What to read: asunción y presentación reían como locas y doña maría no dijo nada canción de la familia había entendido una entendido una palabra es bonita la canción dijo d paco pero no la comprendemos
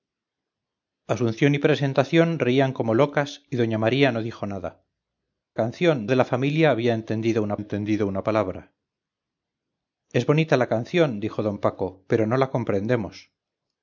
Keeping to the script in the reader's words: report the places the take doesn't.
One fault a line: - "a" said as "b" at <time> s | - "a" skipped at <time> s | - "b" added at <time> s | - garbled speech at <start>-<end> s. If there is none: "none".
none